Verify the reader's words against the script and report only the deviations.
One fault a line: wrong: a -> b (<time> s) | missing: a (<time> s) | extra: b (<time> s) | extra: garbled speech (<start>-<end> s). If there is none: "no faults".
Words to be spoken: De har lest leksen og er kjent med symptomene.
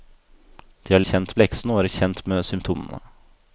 wrong: lest -> kjent (1.1 s)